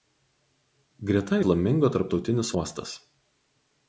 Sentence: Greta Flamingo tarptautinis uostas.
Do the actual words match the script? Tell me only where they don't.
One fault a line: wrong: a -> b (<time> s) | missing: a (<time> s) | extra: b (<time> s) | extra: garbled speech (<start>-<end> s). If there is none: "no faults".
no faults